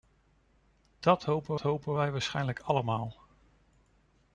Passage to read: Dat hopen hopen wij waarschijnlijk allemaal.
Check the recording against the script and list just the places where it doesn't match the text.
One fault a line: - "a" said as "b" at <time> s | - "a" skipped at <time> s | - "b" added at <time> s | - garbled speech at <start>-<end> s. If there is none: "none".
none